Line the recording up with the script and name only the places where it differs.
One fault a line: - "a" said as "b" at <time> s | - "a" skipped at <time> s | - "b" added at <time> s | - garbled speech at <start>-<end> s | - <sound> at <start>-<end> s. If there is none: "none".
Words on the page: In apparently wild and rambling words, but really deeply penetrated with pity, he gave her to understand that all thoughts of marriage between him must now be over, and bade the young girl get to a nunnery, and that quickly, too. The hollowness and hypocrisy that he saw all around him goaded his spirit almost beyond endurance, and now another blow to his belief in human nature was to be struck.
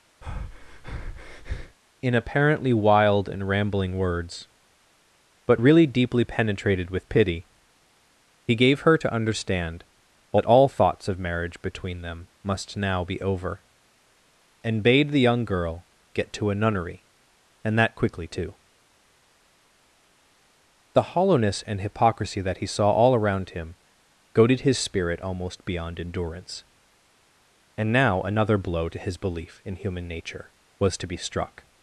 - breath at 0.2-1.8 s
- "him" said as "them" at 12.0 s